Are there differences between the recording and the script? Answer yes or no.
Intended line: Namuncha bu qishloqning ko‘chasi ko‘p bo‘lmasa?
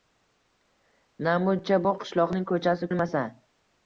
yes